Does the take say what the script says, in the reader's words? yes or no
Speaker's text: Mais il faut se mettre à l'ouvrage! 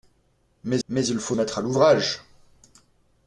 no